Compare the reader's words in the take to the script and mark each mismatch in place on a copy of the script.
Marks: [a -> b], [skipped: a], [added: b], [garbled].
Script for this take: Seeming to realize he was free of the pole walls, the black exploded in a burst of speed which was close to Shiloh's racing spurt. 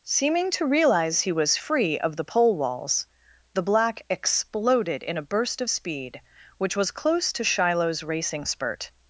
Seeming to realize he was free of the pole walls, the black exploded in a burst of speed which was close to Shiloh's racing spurt.